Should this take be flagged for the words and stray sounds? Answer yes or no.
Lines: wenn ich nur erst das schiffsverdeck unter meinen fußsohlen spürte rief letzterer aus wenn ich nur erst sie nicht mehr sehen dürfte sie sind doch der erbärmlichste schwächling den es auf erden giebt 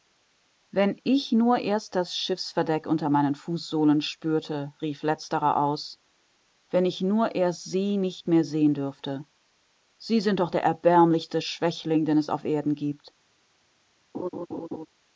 yes